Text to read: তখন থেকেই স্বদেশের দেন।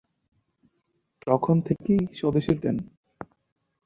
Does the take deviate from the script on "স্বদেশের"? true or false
false